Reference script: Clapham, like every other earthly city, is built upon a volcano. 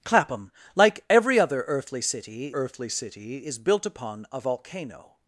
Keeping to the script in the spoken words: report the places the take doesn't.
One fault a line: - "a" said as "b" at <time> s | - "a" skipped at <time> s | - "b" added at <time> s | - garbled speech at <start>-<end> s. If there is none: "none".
- "earthly city" added at 2.5 s